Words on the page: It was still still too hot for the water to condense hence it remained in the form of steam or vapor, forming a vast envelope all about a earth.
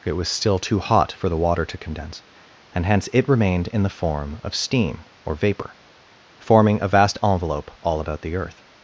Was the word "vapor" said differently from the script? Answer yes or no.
no